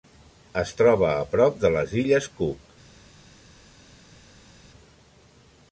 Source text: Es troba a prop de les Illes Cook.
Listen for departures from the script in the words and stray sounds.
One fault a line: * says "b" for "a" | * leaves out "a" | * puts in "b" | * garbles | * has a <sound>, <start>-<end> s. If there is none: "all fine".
all fine